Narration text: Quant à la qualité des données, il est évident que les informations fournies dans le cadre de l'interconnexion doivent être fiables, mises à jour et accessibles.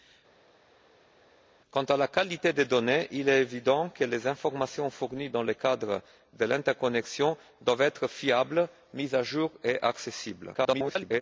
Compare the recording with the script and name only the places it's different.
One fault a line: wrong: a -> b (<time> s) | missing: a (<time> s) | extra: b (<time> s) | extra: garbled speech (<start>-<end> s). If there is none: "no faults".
extra: garbled speech (10.5-11.2 s)